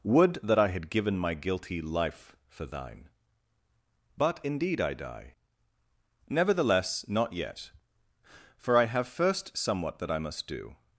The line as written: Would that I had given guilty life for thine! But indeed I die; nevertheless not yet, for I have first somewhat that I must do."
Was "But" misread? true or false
false